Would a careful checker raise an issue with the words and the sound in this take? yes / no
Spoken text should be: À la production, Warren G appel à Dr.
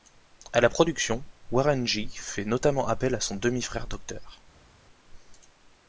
yes